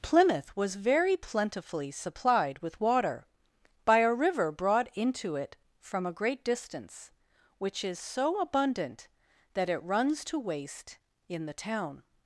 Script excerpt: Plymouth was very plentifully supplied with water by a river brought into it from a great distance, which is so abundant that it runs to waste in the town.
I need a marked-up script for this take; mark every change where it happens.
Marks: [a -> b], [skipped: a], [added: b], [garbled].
Plymouth was very plentifully supplied with water by a river brought into it from a great distance, which is so abundant that it runs to waste in the town.